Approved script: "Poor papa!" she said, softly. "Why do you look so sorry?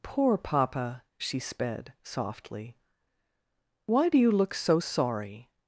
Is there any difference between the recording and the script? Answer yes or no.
yes